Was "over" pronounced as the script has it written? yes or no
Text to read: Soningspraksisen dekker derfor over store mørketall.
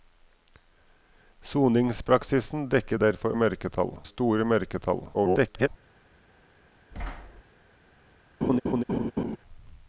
no